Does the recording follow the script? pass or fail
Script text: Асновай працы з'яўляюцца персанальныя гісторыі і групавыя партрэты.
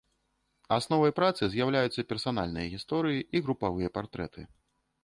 pass